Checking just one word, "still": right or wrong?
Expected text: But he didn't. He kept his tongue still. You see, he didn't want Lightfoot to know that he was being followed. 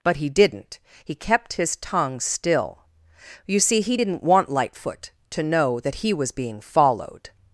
right